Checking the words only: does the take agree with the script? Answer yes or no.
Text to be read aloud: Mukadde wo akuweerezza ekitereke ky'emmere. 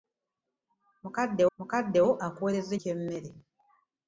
no